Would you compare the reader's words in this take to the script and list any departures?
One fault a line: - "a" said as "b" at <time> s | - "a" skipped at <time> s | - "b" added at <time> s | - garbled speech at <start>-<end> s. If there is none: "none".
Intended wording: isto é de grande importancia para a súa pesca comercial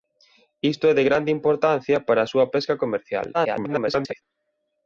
- garbled speech at 3.3-4.2 s